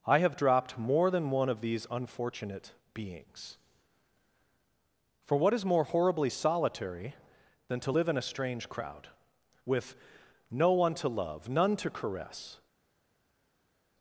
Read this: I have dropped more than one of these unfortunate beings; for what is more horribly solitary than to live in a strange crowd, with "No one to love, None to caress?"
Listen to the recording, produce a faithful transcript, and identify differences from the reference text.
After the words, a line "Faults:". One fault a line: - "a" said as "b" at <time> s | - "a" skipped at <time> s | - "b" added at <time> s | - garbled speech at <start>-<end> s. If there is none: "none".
I have dropped more than one of these unfortunate beings; for what is more horribly solitary than to live in a strange crowd, with "No one to love, None to caress?"
Faults:
none